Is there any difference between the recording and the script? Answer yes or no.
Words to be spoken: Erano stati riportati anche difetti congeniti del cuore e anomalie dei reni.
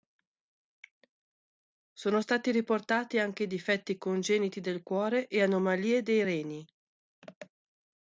yes